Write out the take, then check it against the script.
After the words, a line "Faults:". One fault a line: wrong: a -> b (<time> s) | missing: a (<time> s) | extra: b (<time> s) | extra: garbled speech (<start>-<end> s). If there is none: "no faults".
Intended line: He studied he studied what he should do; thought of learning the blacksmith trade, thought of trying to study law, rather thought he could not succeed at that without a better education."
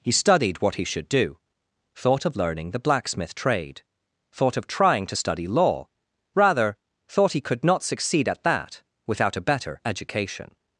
He studied what he should do; thought of learning the blacksmith trade, thought of trying to study law, rather thought he could not succeed at that without a better education."
Faults:
missing: he studied (0.6 s)